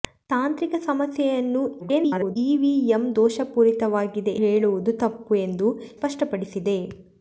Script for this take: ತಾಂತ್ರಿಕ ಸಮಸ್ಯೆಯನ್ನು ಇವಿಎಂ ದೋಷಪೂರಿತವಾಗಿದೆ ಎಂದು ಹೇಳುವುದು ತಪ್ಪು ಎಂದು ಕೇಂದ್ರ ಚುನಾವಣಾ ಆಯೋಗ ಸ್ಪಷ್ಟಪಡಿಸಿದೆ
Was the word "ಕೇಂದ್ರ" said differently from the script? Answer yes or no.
yes